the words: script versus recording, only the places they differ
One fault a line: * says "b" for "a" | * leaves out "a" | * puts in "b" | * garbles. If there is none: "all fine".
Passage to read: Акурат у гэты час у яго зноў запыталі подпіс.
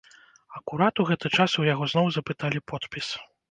all fine